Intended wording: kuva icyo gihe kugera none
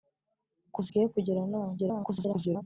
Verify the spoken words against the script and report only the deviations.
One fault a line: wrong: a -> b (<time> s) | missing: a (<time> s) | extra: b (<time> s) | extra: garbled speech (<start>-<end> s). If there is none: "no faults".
missing: icyo (0.9 s)
extra: garbled speech (1.8-2.6 s)